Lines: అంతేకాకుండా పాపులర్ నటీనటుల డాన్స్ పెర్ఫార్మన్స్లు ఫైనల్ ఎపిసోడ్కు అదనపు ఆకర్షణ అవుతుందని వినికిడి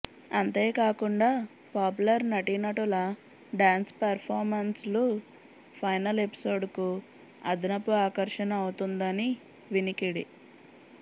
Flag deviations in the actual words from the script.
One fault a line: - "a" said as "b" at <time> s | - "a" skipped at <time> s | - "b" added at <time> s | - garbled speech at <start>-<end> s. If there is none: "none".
none